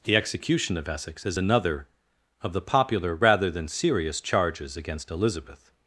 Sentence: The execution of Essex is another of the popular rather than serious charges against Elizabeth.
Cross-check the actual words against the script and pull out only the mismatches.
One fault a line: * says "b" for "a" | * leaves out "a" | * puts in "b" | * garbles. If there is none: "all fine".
all fine